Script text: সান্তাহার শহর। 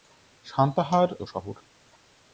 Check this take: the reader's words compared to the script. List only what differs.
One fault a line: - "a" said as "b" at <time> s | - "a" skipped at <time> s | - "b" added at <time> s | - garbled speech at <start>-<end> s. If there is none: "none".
none